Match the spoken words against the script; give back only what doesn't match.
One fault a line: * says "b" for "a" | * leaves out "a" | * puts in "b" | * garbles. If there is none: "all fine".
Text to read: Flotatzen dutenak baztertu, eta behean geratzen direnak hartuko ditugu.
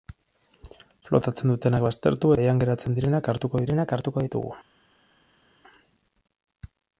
* leaves out "eta"
* puts in "direnak hartuko"